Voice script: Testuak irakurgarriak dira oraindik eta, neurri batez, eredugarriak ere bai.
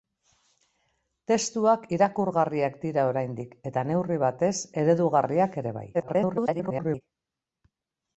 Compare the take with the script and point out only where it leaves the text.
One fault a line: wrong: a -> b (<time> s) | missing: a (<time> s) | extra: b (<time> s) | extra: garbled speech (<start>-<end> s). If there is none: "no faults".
extra: garbled speech (5.9-7.0 s)